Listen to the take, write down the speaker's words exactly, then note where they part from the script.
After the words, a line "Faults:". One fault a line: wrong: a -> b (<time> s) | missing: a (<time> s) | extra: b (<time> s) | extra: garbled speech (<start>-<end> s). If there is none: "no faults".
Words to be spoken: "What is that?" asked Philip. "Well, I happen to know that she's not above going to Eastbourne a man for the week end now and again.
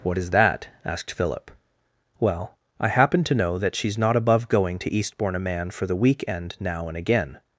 "What is that?" asked Philip. "Well, I happen to know that she's not above going to Eastbourne a man for the week end now and again.
Faults:
no faults